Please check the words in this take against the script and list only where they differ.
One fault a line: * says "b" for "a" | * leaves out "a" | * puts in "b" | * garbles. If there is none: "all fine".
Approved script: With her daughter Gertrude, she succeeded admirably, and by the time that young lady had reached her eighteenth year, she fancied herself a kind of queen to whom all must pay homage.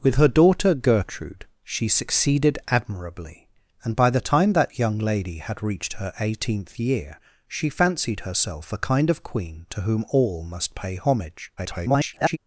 * garbles